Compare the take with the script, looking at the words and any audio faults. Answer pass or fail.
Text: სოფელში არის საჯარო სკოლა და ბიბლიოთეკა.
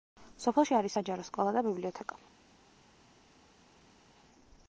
pass